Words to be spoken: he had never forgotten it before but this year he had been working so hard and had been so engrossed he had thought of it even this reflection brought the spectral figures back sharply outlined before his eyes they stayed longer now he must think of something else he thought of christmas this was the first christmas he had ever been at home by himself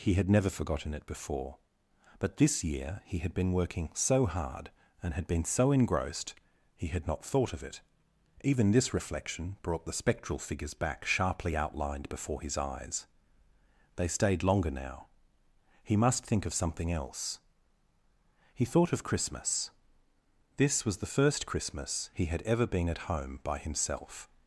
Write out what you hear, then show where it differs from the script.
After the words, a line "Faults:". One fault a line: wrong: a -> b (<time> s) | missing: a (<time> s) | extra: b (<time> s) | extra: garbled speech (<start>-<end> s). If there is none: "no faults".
he had never forgotten it before but this year he had been working so hard and had been so engrossed he had not thought of it even this reflection brought the spectral figures back sharply outlined before his eyes they stayed longer now he must think of something else he thought of christmas this was the first christmas he had ever been at home by himself
Faults:
extra: not (7.0 s)